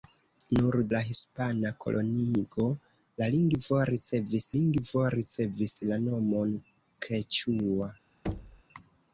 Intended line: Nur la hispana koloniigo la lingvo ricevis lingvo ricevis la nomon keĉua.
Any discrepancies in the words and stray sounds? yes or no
yes